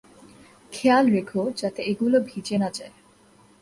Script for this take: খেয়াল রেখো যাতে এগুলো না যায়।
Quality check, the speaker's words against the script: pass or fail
fail